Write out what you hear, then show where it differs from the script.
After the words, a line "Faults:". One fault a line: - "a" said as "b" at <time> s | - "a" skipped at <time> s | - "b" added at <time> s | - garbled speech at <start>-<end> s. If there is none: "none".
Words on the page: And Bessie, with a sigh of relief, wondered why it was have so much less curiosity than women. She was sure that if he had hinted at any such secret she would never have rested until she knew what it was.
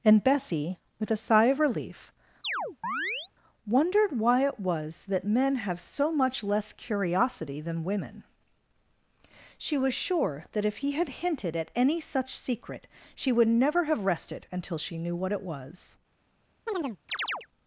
And Bessie, with a sigh of relief, wondered why it was that men have so much less curiosity than women. She was sure that if he had hinted at any such secret she would never have rested until she knew what it was.
Faults:
- "that men" added at 5.1 s